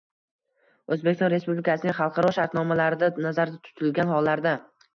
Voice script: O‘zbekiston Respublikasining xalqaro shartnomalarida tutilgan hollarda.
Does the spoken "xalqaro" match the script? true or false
true